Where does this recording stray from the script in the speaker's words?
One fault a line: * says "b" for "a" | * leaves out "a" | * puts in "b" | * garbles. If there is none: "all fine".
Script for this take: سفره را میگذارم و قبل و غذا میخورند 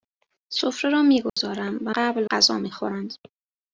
all fine